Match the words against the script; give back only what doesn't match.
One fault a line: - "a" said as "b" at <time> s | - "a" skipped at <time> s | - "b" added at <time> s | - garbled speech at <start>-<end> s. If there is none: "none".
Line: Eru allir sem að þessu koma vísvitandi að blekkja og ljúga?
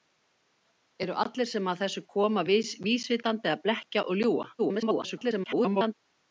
- garbled speech at 4.6-5.9 s